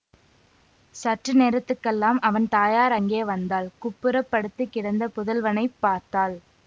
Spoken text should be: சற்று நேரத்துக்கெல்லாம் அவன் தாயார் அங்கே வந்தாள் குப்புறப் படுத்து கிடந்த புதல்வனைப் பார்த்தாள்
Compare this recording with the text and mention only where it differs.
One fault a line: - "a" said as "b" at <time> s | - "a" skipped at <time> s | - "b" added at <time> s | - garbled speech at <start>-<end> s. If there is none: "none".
none